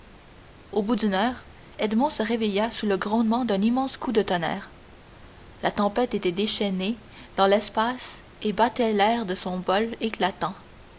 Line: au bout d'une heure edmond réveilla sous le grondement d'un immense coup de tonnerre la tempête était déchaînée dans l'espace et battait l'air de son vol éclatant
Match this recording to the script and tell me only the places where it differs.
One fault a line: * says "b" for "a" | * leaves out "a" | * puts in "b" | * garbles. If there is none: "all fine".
* puts in "se"